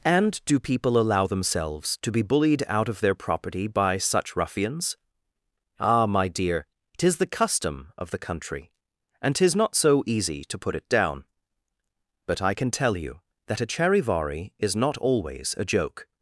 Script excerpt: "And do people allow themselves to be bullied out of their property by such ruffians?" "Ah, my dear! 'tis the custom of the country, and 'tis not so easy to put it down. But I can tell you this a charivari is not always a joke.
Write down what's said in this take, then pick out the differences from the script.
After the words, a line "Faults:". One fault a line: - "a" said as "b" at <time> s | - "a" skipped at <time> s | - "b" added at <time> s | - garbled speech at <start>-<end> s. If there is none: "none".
"And do people allow themselves to be bullied out of their property by such ruffians?" "Ah, my dear! 'tis the custom of the country, and 'tis not so easy to put it down. But I can tell you that a charivari is not always a joke.
Faults:
- "this" said as "that" at 13.5 s